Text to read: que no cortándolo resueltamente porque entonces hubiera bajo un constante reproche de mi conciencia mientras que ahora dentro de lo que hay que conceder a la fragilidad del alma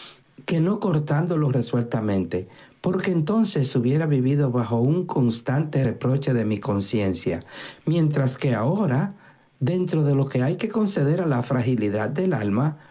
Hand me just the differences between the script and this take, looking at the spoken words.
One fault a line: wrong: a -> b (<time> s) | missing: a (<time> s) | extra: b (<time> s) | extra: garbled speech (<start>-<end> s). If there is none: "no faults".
extra: vivido (4.1 s)